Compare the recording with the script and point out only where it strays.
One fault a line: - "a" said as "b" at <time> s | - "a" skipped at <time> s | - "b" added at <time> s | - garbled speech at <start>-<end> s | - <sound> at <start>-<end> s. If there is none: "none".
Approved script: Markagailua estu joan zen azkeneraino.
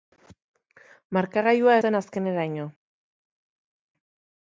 - "estu joan" skipped at 1.8 s